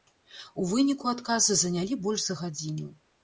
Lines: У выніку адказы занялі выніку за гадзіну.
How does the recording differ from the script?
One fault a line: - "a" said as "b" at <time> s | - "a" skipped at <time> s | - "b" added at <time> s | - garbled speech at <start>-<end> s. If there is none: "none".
- "выніку" said as "больш" at 2.0 s